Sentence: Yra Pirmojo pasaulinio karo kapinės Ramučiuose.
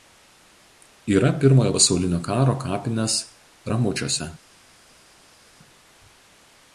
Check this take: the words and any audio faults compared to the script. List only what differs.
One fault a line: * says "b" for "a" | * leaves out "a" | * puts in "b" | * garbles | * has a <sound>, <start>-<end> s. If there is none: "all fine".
all fine